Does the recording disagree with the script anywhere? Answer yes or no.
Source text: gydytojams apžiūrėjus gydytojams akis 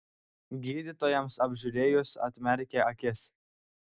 yes